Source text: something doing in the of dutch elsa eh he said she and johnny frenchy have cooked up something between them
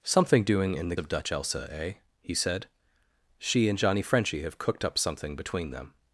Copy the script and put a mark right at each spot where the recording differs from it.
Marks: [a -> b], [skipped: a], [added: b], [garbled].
something doing in the of dutch elsa eh he said she and johnny frenchy have cooked up something between them